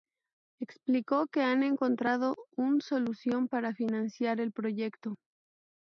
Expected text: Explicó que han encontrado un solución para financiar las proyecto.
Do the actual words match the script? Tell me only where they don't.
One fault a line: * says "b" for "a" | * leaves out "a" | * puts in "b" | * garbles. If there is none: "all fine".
* says "el" for "las"